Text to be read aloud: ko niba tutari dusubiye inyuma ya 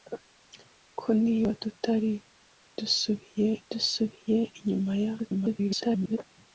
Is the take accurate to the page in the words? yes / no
no